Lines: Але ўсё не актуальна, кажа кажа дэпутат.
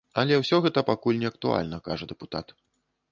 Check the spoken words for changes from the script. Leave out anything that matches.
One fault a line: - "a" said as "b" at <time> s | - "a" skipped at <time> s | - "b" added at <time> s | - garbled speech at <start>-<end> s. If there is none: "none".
- "гэта пакуль" added at 0.7 s
- "кажа" skipped at 2.1 s